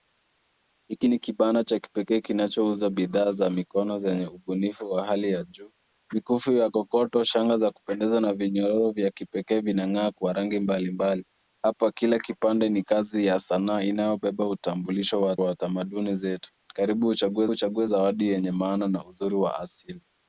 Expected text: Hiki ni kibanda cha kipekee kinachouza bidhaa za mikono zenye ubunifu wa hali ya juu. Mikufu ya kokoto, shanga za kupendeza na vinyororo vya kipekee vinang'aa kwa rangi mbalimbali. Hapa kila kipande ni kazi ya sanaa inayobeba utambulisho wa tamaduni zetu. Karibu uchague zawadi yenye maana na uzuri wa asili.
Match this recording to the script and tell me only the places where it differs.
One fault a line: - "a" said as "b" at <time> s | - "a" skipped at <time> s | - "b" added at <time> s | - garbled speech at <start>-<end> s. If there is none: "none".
- "wa" added at 15.4 s
- "uchague" added at 17.5 s